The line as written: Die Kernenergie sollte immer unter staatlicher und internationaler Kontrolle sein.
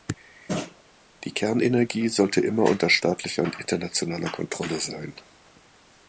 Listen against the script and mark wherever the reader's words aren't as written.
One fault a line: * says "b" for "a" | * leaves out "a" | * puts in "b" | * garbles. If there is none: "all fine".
all fine